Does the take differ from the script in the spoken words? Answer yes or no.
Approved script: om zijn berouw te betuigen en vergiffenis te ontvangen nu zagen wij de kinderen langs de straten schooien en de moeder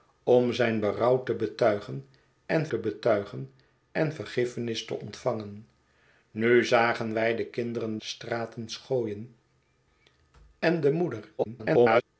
yes